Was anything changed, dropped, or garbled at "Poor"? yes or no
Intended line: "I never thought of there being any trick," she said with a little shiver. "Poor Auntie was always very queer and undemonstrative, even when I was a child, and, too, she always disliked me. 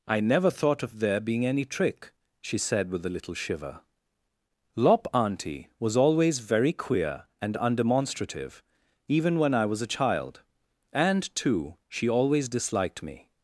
yes